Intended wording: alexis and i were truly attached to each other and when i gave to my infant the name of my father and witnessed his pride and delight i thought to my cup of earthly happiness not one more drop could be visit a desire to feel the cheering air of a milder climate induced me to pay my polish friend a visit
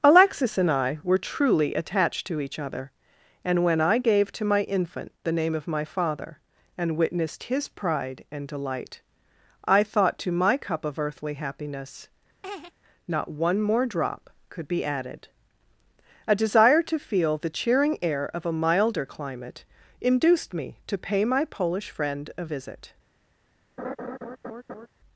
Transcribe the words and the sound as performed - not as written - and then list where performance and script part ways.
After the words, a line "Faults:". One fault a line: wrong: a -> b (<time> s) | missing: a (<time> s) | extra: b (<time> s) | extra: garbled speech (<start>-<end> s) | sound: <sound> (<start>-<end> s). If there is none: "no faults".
alexis and i were truly attached to each other and when i gave to my infant the name of my father and witnessed his pride and delight i thought to my cup of earthly happiness not one more drop could be added a desire to feel the cheering air of a milder climate induced me to pay my polish friend a visit
Faults:
sound: laugh (12.4-12.7 s)
wrong: visit -> added (14.8 s)
sound: laugh (23.8-24.9 s)